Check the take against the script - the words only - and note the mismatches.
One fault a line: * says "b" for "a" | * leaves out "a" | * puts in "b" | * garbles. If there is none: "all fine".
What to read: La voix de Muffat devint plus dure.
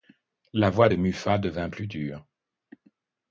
all fine